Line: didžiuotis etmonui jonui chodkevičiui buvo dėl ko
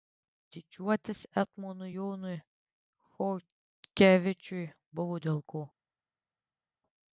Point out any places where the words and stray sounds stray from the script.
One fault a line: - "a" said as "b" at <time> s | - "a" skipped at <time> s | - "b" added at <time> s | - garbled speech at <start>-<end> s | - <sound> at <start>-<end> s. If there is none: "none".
none